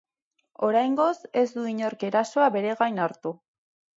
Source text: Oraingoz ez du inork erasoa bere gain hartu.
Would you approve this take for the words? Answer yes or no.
yes